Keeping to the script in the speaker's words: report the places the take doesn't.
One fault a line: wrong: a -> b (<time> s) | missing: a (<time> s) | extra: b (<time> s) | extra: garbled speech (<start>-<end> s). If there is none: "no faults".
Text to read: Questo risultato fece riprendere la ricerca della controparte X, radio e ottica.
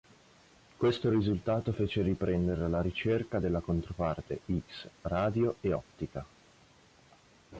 no faults